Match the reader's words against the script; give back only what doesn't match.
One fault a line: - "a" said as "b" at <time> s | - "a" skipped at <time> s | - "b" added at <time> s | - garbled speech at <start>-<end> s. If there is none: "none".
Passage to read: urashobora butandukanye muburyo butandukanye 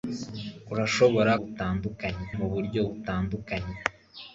none